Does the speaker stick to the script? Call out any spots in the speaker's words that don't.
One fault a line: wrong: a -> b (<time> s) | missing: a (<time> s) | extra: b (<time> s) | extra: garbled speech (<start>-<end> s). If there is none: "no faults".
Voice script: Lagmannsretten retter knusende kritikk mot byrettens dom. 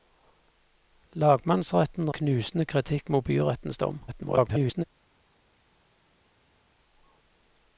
missing: retter (2.1 s)
extra: garbled speech (4.1-4.8 s)